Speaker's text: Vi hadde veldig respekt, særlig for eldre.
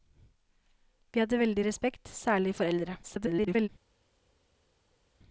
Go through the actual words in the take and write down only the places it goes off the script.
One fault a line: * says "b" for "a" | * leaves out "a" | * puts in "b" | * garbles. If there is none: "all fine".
* garbles